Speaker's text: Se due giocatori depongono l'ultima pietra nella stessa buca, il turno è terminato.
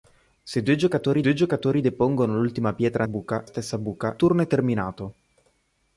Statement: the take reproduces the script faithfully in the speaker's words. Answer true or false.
false